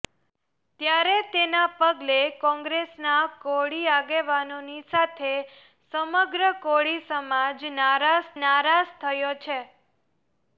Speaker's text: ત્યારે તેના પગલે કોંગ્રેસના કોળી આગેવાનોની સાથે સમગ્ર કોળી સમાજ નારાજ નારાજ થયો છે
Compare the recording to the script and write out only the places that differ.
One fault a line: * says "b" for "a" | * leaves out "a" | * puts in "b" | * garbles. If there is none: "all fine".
all fine